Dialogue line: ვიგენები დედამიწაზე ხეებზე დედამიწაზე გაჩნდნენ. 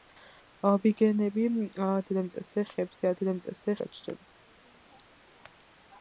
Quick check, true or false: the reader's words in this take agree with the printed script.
true